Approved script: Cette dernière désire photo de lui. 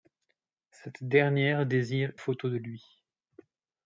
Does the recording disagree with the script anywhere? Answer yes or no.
no